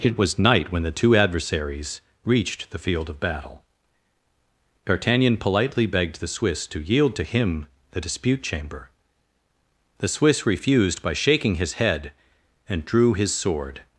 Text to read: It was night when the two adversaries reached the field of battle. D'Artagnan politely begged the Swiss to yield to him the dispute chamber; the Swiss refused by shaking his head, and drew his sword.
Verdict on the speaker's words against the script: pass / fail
pass